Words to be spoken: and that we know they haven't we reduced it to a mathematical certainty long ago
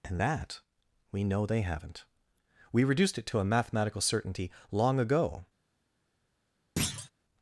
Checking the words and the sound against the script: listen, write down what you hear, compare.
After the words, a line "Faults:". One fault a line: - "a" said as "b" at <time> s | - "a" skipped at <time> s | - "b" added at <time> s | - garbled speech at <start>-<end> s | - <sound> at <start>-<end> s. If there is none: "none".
and that we know they haven't we reduced it to a mathematical certainty long ago
Faults:
- thud at 6.8-7.1 s